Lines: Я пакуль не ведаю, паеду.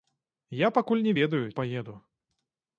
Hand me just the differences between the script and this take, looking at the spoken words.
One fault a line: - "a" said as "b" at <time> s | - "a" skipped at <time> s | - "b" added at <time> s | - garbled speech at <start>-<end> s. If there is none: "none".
none